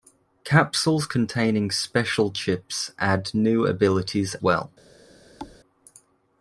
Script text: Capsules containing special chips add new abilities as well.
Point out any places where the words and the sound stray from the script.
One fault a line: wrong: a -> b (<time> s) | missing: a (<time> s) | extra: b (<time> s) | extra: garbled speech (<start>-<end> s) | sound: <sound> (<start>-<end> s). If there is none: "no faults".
missing: as (4.3 s)
sound: thud (5.4-5.6 s)